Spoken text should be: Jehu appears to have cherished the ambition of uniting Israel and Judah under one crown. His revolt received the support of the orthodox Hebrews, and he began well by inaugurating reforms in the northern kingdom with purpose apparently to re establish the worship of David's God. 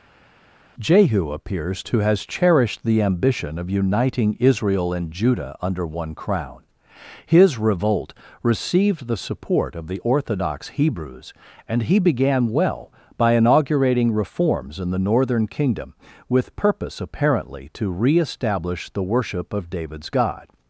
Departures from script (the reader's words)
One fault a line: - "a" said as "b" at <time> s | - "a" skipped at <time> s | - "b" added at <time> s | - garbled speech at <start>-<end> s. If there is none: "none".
- "have" said as "has" at 2.0 s